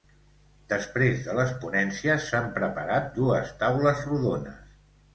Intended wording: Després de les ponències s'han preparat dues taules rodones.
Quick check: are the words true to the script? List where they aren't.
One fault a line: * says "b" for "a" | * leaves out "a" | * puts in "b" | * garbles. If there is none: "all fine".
all fine